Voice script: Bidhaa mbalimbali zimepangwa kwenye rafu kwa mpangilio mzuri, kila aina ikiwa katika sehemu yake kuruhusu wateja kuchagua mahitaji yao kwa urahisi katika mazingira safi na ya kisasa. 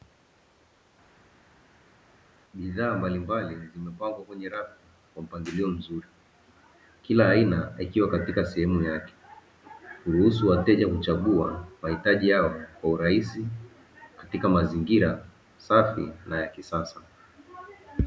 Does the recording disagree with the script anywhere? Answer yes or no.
no